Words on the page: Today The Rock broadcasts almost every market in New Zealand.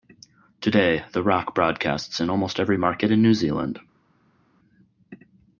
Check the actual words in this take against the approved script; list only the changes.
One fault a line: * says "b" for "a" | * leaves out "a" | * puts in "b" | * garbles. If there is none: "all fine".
* puts in "in"